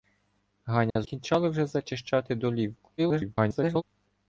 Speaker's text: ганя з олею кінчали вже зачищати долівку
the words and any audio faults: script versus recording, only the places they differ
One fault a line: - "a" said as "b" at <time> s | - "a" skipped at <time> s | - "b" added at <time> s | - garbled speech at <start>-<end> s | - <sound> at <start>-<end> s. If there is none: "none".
- dropout at 0.9-1.0 s
- "олею" skipped at 1.1 s
- garbled speech at 3.0-3.8 s